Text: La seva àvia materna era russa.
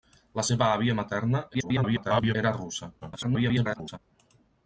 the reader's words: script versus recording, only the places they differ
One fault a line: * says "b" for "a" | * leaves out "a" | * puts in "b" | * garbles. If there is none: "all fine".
* garbles
* garbles